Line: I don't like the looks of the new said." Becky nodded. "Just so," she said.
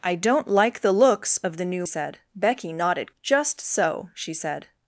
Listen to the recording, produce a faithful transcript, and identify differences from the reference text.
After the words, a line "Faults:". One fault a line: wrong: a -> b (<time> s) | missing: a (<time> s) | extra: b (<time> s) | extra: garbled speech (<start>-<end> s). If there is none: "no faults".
I don't like the looks of the new said." Becky nodded. "Just so," she said.
Faults:
no faults